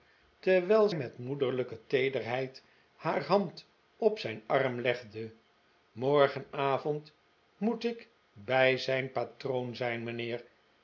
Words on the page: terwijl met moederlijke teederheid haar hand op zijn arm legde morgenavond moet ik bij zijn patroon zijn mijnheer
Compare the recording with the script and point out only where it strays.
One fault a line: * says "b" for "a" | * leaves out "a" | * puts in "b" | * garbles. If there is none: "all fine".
all fine